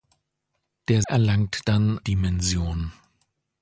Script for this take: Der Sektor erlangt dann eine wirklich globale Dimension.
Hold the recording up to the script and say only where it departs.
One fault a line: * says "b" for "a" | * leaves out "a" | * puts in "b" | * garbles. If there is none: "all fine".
* leaves out "Sektor"
* leaves out "eine wirklich globale"